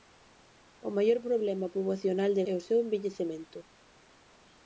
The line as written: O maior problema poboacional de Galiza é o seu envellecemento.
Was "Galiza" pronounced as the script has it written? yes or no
no